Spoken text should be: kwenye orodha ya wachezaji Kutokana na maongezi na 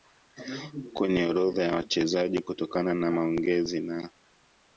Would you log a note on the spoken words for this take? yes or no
no